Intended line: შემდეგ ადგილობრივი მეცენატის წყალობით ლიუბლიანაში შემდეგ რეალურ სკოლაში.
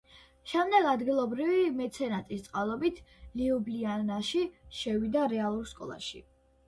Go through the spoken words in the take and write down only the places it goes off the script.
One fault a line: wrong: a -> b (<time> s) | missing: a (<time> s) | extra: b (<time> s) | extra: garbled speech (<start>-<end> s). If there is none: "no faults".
wrong: შემდეგ -> შევიდა (4.8 s)